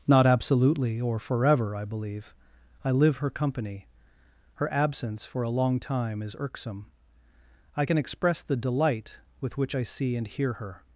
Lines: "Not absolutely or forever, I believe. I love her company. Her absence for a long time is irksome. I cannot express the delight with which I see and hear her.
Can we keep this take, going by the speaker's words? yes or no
no